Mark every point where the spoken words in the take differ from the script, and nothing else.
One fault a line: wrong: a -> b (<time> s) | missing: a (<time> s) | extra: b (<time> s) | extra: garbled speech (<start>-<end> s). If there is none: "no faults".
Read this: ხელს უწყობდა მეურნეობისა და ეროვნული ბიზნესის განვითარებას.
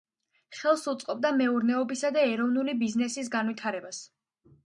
no faults